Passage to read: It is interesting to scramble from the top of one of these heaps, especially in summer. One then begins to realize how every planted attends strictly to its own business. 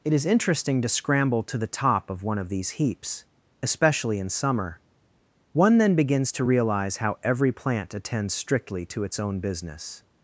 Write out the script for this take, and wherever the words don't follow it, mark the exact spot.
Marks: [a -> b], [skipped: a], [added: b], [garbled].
It is interesting to scramble [from -> to] the top of one of these heaps, especially in summer. One then begins to realize how every [planted -> plant] attends strictly to its own business.